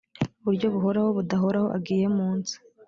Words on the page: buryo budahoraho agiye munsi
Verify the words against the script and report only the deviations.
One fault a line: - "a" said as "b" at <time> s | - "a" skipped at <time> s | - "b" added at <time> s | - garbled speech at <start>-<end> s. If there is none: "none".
- "buhoraho" added at 0.7 s